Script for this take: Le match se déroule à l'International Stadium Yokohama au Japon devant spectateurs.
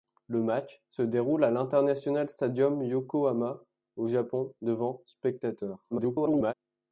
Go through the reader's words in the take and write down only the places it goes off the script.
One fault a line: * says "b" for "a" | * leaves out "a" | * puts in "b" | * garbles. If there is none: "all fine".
* garbles